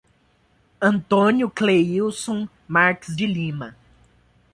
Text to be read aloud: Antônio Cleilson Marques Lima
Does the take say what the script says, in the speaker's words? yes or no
no